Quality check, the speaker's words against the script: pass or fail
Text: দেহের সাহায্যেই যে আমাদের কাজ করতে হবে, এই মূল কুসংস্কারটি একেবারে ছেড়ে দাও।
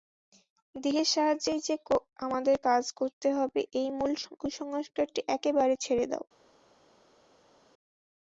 pass